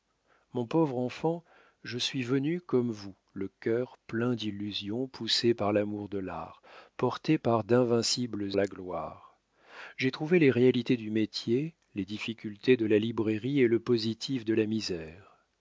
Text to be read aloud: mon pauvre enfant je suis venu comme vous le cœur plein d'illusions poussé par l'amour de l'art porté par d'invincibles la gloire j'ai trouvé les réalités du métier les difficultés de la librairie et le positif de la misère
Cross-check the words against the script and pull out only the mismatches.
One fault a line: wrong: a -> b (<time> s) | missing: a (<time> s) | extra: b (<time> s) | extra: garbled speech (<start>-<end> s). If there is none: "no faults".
no faults